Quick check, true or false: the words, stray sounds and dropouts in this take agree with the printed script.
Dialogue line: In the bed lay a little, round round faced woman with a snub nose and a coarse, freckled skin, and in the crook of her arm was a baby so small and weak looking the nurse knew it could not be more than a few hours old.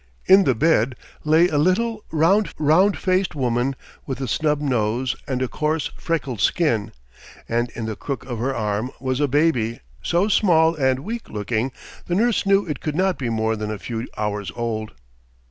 true